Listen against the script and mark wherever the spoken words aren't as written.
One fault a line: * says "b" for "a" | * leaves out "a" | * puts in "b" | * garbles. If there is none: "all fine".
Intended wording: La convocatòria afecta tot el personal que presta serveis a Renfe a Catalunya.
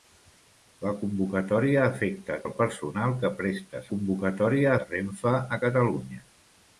* leaves out "tot"
* says "convocatòria" for "serveis"